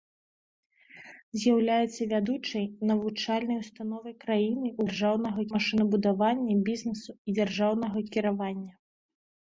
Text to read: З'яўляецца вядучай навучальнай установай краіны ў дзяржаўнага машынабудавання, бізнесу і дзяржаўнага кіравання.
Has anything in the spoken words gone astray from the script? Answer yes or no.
no